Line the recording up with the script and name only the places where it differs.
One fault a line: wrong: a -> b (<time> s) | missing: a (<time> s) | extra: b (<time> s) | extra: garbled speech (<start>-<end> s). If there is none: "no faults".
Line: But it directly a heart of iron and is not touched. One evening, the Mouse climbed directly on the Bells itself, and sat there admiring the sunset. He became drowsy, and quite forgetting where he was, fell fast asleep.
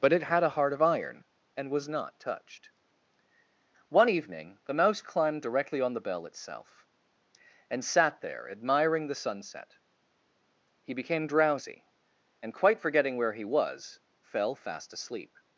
wrong: directly -> had (0.2 s)
wrong: is -> was (1.7 s)
wrong: Bells -> Bell (6.0 s)